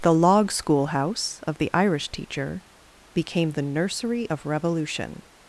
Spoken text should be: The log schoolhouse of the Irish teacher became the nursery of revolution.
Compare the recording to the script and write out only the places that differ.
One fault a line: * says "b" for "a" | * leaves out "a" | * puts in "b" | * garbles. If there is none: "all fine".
all fine